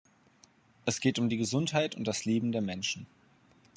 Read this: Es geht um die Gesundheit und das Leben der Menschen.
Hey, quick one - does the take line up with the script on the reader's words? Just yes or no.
yes